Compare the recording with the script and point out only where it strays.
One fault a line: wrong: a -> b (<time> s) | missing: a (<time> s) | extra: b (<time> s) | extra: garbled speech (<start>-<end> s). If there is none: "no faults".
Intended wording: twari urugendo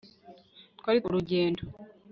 no faults